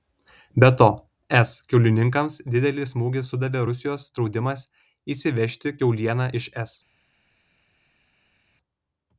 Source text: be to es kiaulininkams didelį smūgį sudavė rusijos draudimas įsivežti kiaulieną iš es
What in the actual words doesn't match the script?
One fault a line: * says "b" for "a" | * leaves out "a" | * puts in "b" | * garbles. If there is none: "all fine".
all fine